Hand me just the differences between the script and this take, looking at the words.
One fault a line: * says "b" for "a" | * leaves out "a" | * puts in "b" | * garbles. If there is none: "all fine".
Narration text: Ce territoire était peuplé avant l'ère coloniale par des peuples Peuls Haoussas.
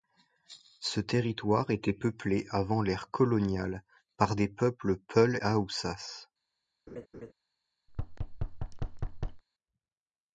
all fine